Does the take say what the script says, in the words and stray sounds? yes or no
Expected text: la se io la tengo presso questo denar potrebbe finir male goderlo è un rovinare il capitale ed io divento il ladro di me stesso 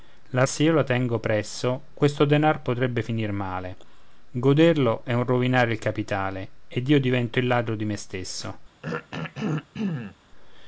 no